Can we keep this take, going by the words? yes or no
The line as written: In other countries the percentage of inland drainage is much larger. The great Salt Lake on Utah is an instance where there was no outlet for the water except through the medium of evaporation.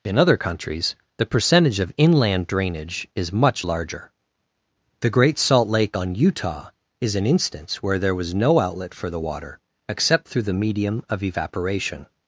yes